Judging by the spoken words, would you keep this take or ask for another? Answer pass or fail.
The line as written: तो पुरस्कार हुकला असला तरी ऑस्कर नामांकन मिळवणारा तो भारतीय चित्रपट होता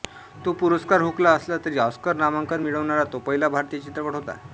fail